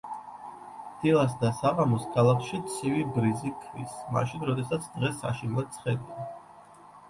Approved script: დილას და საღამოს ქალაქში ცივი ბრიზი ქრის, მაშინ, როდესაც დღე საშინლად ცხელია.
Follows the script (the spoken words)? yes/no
yes